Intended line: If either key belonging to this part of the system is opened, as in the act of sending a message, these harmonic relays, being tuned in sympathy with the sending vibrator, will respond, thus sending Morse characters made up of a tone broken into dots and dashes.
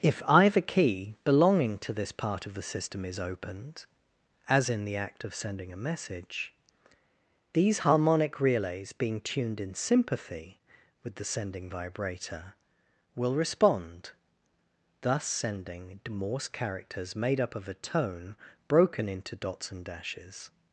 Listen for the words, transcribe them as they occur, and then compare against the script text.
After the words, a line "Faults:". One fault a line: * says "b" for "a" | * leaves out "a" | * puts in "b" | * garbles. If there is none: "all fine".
If either key belonging to this part of the system is opened, as in the act of sending a message, these harmonic relays, being tuned in sympathy with the sending vibrator, will respond, thus sending Morse characters made up of a tone broken into dots and dashes.
Faults:
all fine